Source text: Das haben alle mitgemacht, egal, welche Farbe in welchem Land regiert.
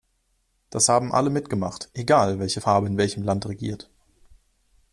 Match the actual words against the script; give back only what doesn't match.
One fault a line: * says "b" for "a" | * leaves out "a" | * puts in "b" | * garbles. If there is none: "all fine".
all fine